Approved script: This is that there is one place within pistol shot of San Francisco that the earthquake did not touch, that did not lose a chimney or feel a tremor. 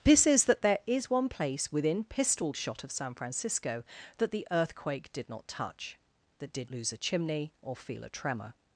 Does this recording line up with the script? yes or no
no